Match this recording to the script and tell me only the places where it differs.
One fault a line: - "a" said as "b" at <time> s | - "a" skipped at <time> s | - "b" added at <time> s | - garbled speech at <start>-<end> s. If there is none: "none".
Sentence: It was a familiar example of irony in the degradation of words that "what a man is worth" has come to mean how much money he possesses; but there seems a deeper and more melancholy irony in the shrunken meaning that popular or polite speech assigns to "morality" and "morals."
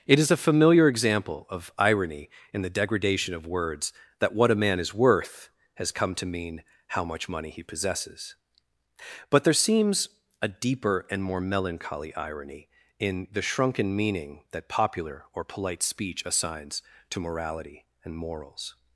- "was" said as "is" at 0.2 s